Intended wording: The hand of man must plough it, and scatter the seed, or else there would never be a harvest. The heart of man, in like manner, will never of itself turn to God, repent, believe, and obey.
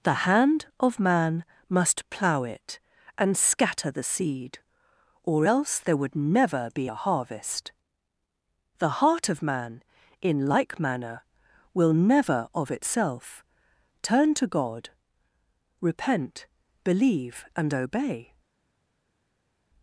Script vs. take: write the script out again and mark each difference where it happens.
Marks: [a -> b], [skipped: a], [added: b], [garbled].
The hand of man must plough it, and scatter the seed, or else there would never be a harvest. The heart of man, in like manner, will never of itself turn to God, repent, believe, and obey.